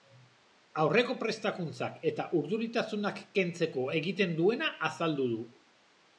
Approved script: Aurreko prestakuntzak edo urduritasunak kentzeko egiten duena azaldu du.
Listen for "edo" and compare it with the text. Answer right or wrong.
wrong